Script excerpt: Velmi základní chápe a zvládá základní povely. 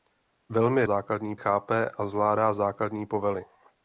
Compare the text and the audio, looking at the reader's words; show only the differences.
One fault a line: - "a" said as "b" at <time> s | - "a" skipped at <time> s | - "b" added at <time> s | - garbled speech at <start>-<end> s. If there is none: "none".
none